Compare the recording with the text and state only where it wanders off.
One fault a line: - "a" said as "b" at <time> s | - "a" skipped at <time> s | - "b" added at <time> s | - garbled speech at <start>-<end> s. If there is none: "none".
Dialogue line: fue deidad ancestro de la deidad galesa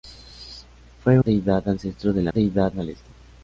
none